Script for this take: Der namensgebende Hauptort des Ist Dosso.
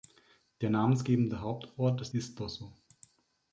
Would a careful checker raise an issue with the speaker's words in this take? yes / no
no